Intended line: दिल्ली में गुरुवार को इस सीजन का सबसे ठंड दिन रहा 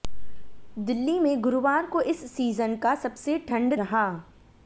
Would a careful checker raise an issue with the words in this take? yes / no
yes